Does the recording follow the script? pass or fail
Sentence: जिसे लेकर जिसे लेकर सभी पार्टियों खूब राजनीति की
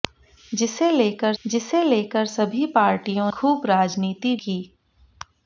pass